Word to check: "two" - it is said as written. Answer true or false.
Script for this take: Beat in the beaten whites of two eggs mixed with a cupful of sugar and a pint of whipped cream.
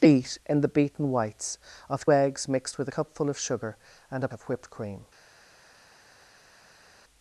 false